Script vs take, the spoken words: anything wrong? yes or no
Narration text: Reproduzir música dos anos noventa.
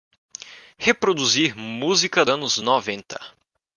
yes